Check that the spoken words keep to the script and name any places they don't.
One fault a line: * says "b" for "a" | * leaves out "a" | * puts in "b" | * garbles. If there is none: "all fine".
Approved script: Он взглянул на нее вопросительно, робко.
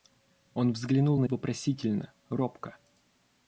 * leaves out "нее"